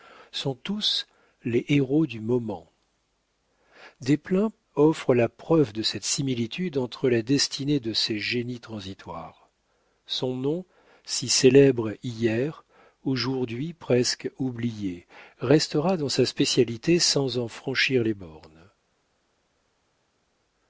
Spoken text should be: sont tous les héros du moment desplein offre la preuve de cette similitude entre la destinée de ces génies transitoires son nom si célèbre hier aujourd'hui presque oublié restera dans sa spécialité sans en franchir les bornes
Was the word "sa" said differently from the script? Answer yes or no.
no